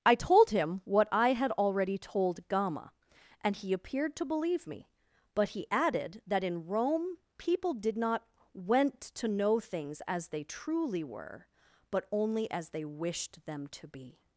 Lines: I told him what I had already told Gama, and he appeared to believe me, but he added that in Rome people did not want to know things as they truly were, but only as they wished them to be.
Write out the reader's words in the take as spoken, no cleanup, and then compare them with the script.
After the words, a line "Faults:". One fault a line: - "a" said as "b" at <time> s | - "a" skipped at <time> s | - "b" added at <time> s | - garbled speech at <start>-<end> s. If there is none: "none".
I told him what I had already told Gama, and he appeared to believe me, but he added that in Rome people did not went to know things as they truly were, but only as they wished them to be.
Faults:
- "want" said as "went" at 8.5 s